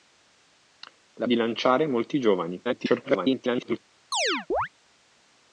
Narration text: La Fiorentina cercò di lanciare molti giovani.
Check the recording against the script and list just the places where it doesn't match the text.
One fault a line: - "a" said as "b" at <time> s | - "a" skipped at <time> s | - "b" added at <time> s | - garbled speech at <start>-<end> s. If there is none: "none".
- "Fiorentina cercò" skipped at 1.3 s
- garbled speech at 2.6-3.8 s